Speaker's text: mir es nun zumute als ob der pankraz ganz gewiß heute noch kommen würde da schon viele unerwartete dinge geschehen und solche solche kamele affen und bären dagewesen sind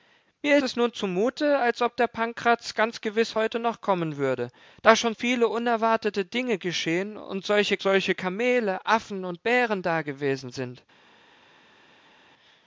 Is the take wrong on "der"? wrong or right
right